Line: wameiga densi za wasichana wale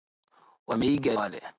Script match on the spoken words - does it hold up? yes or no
no